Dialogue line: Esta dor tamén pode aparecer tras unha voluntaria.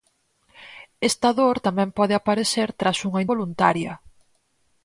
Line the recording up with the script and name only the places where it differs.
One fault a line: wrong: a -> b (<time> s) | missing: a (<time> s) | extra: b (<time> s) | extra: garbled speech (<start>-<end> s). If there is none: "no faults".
no faults